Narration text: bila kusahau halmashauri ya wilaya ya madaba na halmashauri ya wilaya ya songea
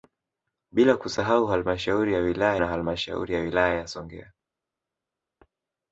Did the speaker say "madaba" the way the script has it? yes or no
no